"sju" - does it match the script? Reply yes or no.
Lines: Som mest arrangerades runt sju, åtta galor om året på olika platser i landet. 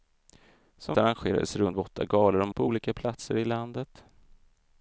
no